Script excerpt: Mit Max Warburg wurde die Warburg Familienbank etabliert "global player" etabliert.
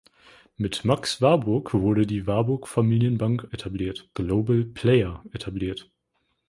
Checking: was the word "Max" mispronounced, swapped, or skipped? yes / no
no